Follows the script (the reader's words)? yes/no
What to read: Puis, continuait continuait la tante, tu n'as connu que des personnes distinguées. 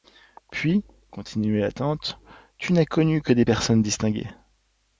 no